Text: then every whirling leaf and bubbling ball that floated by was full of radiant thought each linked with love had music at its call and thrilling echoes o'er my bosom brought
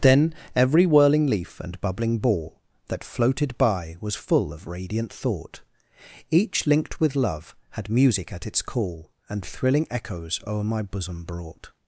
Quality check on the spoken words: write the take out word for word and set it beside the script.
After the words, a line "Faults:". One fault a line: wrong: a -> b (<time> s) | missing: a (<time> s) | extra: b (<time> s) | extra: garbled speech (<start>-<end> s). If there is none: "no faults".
then every whirling leaf and bubbling ball that floated by was full of radiant thought each linked with love had music at its call and thrilling echoes o'er my bosom brought
Faults:
no faults